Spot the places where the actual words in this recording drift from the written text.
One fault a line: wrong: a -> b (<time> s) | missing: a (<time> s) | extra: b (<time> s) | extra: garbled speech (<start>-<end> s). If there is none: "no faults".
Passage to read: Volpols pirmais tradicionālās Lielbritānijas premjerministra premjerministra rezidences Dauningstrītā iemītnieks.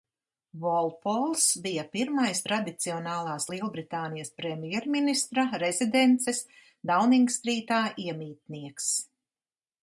extra: bija (1.6 s)
missing: premjerministra (5.5 s)